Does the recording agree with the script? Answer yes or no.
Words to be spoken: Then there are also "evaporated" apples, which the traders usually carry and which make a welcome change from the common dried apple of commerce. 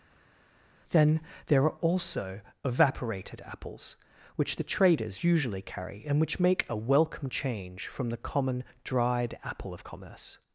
yes